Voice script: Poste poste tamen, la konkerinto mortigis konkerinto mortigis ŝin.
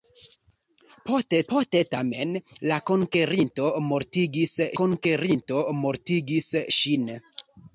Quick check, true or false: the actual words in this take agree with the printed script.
true